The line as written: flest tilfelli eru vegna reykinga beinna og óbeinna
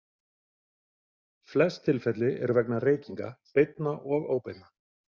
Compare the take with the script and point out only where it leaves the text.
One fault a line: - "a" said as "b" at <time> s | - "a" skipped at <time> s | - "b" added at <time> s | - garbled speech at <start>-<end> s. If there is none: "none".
none